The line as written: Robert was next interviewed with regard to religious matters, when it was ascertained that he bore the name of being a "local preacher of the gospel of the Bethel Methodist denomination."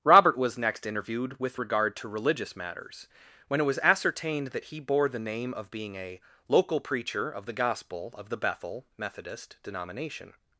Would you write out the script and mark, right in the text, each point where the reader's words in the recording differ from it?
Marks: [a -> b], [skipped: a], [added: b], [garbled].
Robert was next interviewed with regard to religious matters, when it was ascertained that he bore the name of being a "local preacher of the gospel of the Bethel Methodist denomination."